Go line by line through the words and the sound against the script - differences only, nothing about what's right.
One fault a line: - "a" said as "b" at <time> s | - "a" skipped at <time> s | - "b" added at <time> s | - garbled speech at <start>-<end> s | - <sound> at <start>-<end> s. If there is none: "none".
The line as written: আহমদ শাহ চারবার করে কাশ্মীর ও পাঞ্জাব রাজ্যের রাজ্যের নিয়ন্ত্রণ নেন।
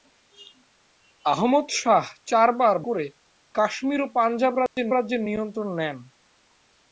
- dropout at 4.7-4.8 s